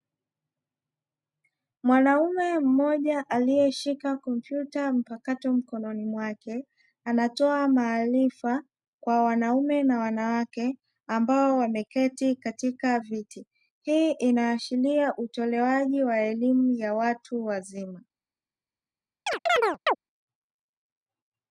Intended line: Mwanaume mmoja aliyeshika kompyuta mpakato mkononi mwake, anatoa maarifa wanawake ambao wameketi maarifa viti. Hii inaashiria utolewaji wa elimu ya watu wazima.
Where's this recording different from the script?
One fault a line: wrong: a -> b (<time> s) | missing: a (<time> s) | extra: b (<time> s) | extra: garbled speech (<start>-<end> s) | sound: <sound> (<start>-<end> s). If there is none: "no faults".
extra: kwa wanaume na (9.0 s)
wrong: maarifa -> katika (12.3 s)
sound: chirp (19.3-20.0 s)